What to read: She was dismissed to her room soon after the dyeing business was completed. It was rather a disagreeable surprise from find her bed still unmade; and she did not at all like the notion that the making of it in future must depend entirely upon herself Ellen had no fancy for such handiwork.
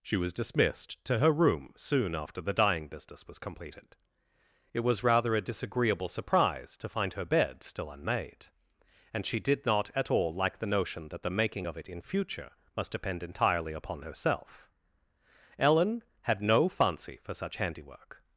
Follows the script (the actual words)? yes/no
no